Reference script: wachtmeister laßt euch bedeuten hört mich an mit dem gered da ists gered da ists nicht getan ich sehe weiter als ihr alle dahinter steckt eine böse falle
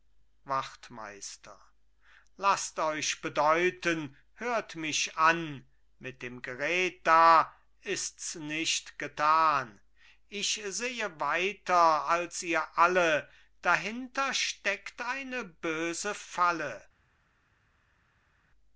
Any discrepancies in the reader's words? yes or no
yes